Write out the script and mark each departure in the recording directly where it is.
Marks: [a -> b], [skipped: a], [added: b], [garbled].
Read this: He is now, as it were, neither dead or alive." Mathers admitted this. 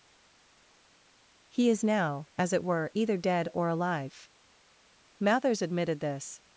He is now, as it were, [neither -> either] dead or alive." Mathers admitted this.